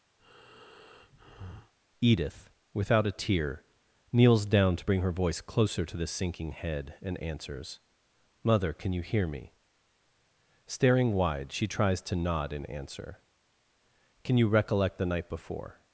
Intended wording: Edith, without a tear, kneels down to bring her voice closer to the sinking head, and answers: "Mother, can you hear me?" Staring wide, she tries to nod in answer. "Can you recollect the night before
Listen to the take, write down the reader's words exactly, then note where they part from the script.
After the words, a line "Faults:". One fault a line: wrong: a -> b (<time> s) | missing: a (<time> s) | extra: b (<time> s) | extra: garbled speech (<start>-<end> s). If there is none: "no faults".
Edith, without a tear, kneels down to bring her voice closer to the sinking head, and answers: "Mother, can you hear me?" Staring wide, she tries to nod in answer. "Can you recollect the night before
Faults:
no faults